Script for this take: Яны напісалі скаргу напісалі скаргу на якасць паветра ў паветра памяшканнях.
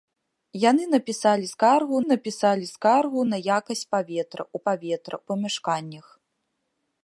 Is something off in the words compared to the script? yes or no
no